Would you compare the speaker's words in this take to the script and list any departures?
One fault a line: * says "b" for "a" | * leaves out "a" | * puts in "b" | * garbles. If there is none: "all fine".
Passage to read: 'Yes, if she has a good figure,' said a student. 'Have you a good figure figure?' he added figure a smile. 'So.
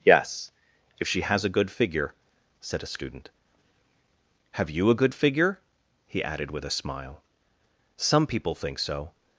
* leaves out "figure"
* says "with" for "figure"
* puts in "Some people think"